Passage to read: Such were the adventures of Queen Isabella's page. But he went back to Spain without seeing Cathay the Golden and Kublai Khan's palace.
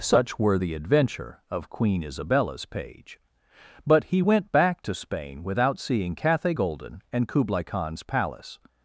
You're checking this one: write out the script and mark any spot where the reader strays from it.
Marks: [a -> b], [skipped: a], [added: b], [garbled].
Such were the [adventures -> adventure] of Queen Isabella's page. But he went back to Spain without seeing Cathay [skipped: the] Golden and Kublai Khan's palace.